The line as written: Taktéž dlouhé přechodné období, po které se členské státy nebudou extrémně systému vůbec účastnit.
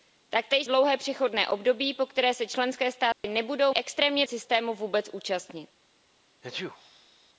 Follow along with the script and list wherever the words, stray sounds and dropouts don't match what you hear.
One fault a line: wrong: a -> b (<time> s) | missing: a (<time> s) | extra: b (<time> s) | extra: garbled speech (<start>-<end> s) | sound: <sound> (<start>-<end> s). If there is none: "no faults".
sound: dropout (3.1-3.2 s)
sound: sneeze (6.4-7.3 s)